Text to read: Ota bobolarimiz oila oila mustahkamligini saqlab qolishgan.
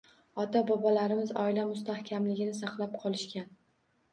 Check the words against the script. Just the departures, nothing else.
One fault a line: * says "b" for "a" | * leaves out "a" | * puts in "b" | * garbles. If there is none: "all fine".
* leaves out "oila"